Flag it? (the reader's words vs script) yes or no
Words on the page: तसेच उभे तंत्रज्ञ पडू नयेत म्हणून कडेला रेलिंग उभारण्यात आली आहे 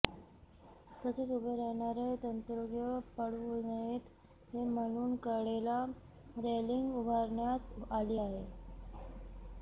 yes